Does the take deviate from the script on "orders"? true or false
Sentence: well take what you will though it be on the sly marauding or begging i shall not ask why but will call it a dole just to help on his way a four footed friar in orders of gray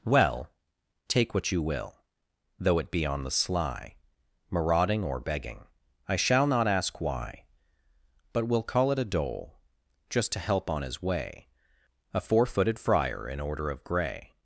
true